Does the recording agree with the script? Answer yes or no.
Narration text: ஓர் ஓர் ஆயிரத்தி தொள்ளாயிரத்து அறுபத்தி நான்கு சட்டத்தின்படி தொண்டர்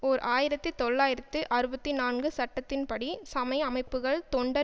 no